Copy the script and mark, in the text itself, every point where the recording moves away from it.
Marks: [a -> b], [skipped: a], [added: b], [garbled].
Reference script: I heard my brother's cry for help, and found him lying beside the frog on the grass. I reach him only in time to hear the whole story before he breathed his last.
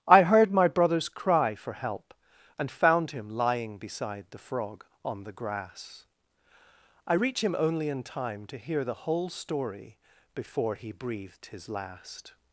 I heard my brother's cry for help, and found him lying beside the frog on the grass. I reach him only in time to hear the whole story before he breathed his last.